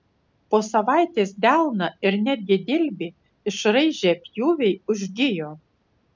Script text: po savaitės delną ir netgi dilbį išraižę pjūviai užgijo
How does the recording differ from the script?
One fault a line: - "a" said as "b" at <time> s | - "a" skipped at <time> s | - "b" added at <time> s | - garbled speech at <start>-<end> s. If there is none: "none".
none